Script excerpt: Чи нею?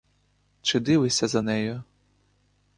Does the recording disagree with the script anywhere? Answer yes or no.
yes